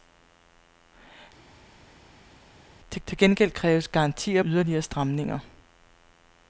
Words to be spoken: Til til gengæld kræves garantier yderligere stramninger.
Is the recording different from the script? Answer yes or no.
no